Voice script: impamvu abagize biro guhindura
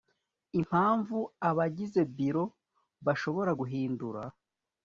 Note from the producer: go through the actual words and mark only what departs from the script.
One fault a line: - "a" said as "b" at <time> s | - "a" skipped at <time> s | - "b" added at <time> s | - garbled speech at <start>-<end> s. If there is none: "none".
- "bashobora" added at 3.0 s